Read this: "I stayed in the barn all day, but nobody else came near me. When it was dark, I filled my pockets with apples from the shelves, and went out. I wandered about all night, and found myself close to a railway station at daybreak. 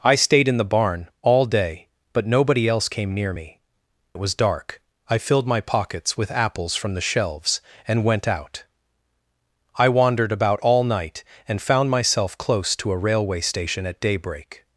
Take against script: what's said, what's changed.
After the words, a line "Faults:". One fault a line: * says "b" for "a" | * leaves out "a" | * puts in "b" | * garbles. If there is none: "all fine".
"I stayed in the barn all day, but nobody else came near me. It was dark, I filled my pockets with apples from the shelves, and went out. I wandered about all night, and found myself close to a railway station at daybreak.
Faults:
* leaves out "When"